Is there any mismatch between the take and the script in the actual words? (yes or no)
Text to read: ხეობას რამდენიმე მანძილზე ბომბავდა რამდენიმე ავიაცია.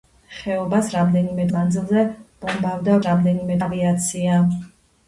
no